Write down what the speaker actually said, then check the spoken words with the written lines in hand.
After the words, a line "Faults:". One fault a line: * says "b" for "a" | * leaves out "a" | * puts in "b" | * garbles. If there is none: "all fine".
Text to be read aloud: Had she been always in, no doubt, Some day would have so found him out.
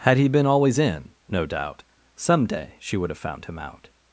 Had he been always in, no doubt, Some day she would have found him out.
Faults:
* says "he" for "she"
* puts in "she"
* leaves out "so"